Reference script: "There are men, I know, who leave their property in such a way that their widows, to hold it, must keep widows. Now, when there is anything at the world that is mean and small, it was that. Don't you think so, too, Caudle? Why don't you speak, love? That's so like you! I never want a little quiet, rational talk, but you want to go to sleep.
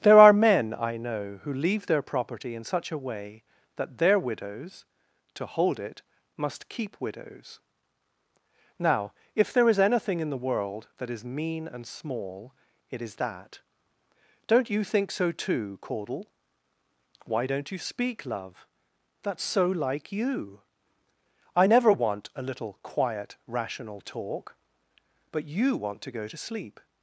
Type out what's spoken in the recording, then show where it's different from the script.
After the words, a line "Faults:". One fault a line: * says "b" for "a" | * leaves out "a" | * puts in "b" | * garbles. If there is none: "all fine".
"There are men, I know, who leave their property in such a way that their widows, to hold it, must keep widows. Now, if there is anything in the world that is mean and small, it is that. Don't you think so, too, Caudle? Why don't you speak, love? That's so like you! I never want a little quiet, rational talk, but you want to go to sleep.
Faults:
* says "if" for "when"
* says "in" for "at"
* says "is" for "was"